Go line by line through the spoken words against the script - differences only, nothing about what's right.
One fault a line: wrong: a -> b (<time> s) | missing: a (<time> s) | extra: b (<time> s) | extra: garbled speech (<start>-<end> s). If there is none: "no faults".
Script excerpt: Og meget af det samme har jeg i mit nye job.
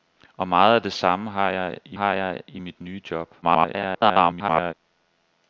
extra: har jeg i (1.9 s)
extra: garbled speech (3.4-4.7 s)